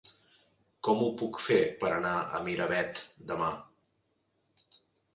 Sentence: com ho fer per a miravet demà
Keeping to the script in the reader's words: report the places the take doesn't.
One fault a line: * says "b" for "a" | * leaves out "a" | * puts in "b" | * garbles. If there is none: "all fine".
* puts in "puc"
* puts in "anar"